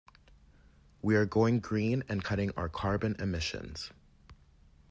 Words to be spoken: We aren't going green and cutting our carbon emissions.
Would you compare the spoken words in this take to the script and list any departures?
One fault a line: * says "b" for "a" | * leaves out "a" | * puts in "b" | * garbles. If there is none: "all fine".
* says "are" for "aren't"